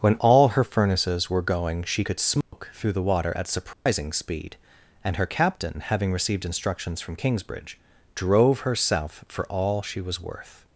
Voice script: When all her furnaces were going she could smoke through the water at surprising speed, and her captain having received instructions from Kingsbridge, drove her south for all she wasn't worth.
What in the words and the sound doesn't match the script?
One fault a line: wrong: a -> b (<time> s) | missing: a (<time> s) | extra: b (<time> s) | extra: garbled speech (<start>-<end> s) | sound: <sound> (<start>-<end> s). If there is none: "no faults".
sound: dropout (2.4-2.5 s)
sound: dropout (3.7-3.9 s)
wrong: wasn't -> was (10.0 s)